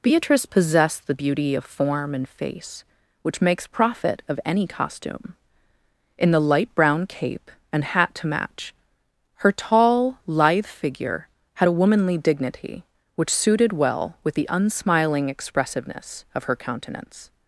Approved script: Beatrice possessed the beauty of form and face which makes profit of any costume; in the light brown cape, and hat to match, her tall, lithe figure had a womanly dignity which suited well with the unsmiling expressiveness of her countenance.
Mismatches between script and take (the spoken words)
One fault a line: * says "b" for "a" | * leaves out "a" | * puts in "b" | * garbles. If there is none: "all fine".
all fine